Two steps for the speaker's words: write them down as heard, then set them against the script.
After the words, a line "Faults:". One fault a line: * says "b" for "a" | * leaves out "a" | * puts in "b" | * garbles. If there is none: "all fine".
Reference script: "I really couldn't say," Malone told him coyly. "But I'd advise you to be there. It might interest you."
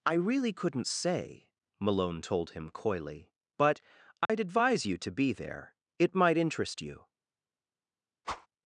"I really couldn't say," Malone told him coyly. "But I'd advise you to be there. It might interest you."
Faults:
all fine